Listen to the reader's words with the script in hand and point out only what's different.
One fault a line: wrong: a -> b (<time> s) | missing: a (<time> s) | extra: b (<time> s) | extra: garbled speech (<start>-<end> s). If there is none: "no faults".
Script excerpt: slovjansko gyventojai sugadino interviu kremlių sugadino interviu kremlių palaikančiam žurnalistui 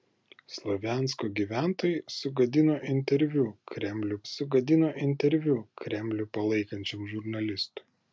no faults